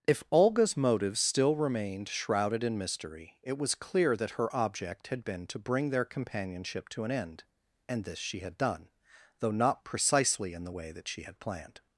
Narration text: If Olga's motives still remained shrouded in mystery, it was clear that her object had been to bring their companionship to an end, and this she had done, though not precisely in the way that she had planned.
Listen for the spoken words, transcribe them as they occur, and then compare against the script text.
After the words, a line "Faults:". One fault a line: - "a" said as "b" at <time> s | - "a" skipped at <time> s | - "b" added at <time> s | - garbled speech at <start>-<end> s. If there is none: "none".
If Olga's motives still remained shrouded in mystery, it was clear that her object had been to bring their companionship to an end, and this she had done, though not precisely in the way that she had planned.
Faults:
none